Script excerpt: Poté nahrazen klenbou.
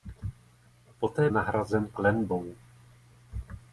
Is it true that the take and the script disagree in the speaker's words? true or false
false